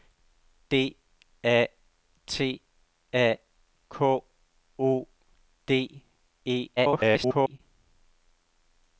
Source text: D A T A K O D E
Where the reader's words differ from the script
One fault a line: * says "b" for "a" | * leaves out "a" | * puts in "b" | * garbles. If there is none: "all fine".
* garbles